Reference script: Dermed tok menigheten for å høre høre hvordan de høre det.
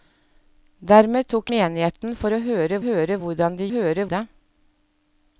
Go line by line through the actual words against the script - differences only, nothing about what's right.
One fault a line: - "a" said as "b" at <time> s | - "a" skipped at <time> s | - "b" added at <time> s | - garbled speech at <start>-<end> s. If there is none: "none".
none